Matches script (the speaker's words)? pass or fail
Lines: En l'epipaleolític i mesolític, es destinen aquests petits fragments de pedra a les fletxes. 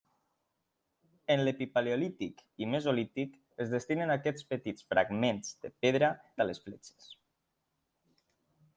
pass